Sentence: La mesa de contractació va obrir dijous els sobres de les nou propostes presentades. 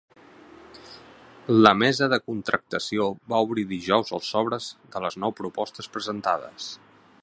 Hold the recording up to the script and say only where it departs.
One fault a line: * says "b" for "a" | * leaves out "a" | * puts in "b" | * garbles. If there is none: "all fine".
all fine